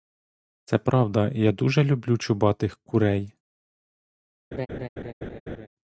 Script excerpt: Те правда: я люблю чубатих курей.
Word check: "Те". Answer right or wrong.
wrong